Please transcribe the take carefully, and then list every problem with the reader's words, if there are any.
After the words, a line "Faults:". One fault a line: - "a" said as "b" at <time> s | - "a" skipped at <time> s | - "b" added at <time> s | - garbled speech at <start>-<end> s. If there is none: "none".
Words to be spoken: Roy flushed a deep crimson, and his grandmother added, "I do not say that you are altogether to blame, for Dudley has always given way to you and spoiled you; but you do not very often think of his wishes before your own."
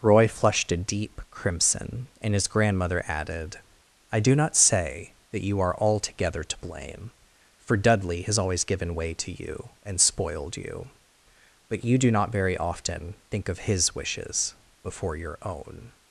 Roy flushed a deep crimson, and his grandmother added, "I do not say that you are altogether to blame, for Dudley has always given way to you and spoiled you; but you do not very often think of his wishes before your own."
Faults:
none